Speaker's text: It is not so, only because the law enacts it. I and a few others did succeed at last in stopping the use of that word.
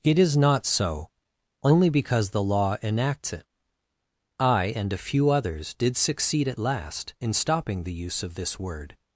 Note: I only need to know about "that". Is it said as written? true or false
false